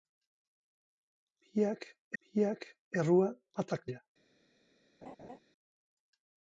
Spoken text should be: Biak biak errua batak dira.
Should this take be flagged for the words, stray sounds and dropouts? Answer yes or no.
yes